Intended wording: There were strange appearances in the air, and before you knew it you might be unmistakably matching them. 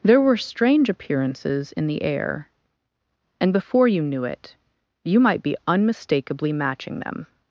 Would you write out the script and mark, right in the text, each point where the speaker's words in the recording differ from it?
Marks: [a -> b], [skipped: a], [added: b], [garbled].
There were strange appearances in the air, and before you knew it you might be unmistakably matching them.